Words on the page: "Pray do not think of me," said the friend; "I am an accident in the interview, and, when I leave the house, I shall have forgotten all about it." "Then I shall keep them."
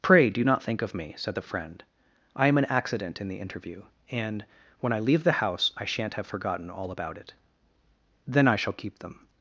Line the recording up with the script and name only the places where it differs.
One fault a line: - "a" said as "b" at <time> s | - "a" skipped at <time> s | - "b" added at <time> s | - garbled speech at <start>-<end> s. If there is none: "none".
- "shall" said as "shan't" at 5.8 s